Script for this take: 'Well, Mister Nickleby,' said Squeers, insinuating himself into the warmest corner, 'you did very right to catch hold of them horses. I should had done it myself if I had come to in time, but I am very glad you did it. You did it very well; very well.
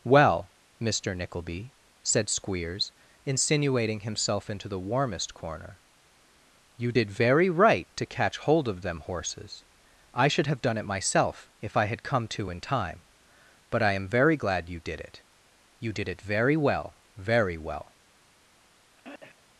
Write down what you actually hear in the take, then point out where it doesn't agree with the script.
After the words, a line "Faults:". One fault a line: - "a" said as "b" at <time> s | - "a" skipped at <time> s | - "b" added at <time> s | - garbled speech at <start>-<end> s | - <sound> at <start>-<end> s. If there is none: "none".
'Well, Mister Nickleby,' said Squeers, insinuating himself into the warmest corner, 'you did very right to catch hold of them horses. I should have done it myself if I had come to in time, but I am very glad you did it. You did it very well; very well.
Faults:
- "had" said as "have" at 10.5 s
- throat clearing at 19.0-19.5 s